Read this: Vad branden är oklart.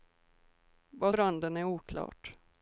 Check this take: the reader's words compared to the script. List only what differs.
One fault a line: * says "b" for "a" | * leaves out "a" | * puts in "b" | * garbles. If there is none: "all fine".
all fine